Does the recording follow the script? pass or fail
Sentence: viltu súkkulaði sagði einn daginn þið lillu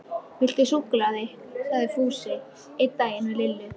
fail